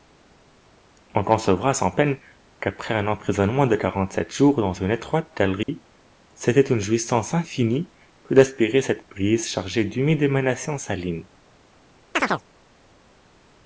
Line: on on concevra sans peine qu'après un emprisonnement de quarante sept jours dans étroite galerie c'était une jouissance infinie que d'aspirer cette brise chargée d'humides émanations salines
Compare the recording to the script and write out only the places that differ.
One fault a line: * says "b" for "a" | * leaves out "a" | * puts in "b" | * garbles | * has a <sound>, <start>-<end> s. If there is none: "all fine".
* leaves out "on"
* puts in "une"
* has a dropout, 5.6-5.7 s
* has a chirp, 12.1-12.4 s